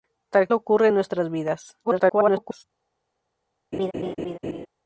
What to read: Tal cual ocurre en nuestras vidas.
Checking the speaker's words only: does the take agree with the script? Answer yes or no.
no